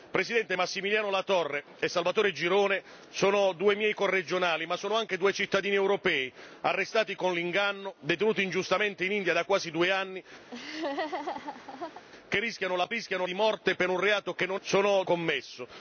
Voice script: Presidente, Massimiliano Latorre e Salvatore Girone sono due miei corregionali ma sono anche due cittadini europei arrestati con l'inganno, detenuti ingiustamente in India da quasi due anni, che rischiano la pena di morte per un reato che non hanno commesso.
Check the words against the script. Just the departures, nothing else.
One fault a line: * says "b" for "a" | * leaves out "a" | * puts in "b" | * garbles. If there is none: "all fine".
* says "rischiano" for "pena"
* says "sono" for "hanno"